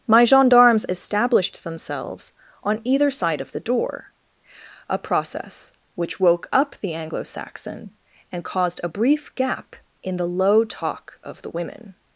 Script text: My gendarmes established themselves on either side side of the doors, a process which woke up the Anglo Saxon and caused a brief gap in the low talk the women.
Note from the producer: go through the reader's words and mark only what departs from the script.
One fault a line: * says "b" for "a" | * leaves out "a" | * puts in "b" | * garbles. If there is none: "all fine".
* leaves out "side"
* says "door" for "doors"
* puts in "of"